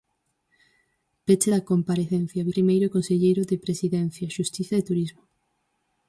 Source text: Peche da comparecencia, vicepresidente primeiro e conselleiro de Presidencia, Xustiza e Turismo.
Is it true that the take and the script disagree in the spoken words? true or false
true